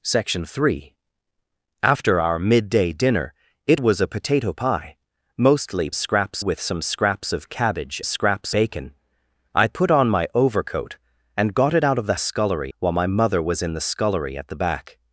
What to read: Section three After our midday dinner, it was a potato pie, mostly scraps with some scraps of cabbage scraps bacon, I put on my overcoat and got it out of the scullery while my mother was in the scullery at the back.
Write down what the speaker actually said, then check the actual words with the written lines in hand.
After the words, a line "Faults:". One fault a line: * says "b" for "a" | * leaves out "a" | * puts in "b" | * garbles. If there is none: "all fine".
Section three After our midday dinner, it was a potato pie, mostly scraps with some scraps of cabbage scraps bacon, I put on my overcoat and got it out of the scullery while my mother was in the scullery at the back.
Faults:
all fine